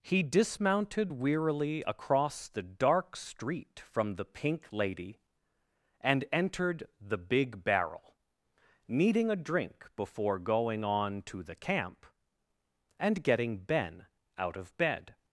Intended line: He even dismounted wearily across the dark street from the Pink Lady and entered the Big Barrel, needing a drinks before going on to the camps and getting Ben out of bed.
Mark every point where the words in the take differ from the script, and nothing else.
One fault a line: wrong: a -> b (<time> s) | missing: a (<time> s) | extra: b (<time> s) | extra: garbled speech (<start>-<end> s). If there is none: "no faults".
missing: even (0.2 s)
wrong: drinks -> drink (9.3 s)
wrong: camps -> camp (11.5 s)